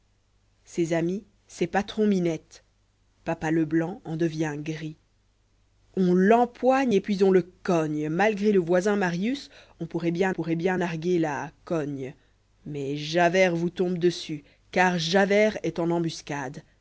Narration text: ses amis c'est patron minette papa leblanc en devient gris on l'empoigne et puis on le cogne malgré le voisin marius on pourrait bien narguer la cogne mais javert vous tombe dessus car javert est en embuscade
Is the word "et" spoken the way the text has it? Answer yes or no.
yes